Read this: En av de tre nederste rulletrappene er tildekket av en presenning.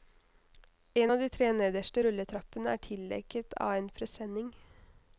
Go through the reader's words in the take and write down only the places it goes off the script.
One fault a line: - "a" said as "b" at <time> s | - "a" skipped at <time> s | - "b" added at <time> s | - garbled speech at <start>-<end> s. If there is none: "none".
none